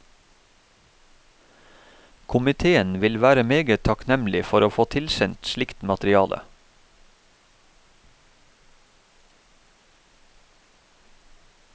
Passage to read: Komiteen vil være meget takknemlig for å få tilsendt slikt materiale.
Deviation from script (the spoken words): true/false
false